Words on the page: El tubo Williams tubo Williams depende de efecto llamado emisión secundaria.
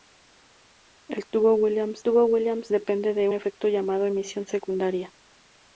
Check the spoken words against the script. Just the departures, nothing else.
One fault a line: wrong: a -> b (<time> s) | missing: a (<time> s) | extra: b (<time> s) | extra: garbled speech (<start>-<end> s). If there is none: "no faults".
no faults